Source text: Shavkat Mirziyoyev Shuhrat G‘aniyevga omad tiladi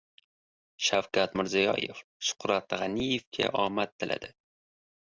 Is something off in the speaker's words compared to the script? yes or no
no